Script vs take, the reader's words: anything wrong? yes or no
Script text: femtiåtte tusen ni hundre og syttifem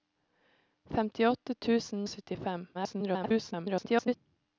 yes